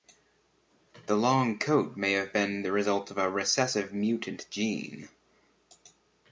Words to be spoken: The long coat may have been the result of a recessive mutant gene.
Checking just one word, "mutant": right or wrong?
right